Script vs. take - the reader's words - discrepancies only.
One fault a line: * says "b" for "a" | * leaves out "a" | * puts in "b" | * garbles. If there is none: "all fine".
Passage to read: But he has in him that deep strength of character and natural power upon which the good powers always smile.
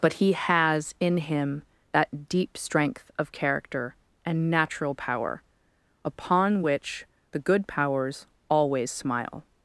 all fine